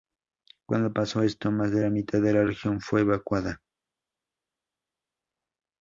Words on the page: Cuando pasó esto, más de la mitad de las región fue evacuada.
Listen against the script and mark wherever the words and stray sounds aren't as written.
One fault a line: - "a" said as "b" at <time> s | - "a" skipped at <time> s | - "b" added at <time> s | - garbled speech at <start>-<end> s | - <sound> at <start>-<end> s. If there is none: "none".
- "las" said as "la" at 2.3 s